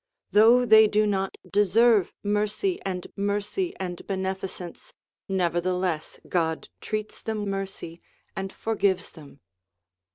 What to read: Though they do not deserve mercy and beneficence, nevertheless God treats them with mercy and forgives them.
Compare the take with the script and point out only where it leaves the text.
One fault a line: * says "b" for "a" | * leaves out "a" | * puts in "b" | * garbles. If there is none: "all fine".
* puts in "mercy and"
* leaves out "with"